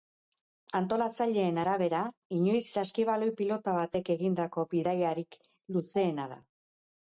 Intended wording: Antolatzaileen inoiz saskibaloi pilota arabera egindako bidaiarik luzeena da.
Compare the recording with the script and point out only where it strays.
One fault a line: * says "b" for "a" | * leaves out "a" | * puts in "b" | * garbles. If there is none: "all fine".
* puts in "arabera"
* says "batek" for "arabera"